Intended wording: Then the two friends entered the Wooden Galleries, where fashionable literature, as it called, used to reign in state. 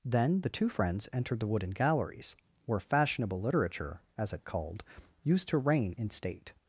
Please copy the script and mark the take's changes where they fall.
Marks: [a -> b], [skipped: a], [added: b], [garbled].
Then the two friends entered the Wooden Galleries, where fashionable literature, as it called, used to reign in state.